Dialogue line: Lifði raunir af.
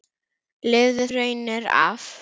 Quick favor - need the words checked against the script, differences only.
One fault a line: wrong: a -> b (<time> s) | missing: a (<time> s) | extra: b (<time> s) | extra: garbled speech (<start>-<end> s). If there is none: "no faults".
no faults